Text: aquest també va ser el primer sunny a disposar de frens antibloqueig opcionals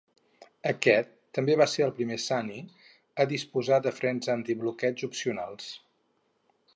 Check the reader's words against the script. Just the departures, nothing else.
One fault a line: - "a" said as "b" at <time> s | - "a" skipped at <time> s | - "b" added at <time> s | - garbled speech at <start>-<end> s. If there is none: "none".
none